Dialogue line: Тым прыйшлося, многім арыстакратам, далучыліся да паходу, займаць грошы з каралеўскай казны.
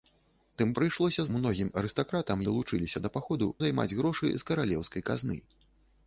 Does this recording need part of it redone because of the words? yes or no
no